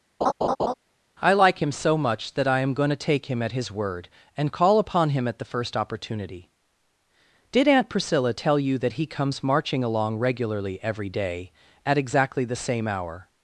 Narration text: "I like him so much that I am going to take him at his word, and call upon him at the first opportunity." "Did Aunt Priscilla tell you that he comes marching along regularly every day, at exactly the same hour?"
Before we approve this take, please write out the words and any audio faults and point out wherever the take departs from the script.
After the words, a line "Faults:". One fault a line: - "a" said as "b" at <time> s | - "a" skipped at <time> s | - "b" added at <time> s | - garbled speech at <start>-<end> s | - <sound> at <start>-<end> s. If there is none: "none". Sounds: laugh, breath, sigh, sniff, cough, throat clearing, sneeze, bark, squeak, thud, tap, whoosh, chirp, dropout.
"I like him so much that I am going to take him at his word, and call upon him at the first opportunity." "Did Aunt Priscilla tell you that he comes marching along regularly every day, at exactly the same hour?"
Faults:
- laugh at 0.2-0.7 s